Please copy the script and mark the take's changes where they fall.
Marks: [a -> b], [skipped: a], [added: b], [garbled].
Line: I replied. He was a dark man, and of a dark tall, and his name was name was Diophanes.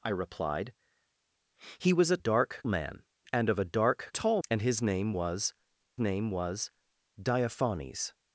I replied. He was a dark man, and of a dark tall, and his name was name was Diophanes.